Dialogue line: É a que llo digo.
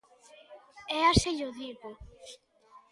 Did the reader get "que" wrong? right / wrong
right